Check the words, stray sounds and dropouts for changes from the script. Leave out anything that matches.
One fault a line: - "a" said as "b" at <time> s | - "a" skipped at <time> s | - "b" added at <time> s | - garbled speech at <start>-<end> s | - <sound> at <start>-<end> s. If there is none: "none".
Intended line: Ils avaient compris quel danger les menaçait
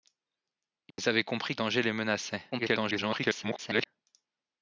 - dropout at 0.9-1.0 s
- "quel" skipped at 1.6 s
- garbled speech at 2.5-3.9 s